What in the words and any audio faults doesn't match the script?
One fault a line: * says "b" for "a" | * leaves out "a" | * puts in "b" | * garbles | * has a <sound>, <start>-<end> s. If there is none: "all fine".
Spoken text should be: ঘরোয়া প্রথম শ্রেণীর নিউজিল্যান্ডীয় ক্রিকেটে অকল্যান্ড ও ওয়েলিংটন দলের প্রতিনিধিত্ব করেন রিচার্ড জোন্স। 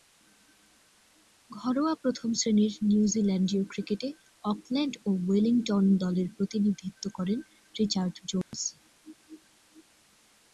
* has a dropout, 8.4-8.5 s